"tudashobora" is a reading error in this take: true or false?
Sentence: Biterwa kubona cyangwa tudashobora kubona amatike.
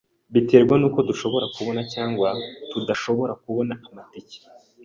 false